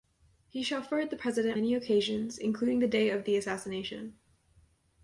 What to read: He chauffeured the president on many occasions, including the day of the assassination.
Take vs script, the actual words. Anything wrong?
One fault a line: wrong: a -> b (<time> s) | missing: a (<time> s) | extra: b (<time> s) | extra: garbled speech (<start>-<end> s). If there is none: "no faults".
missing: on (1.6 s)